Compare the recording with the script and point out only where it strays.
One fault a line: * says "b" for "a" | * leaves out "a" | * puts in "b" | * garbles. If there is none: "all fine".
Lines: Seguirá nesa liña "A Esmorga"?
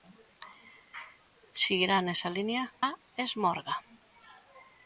all fine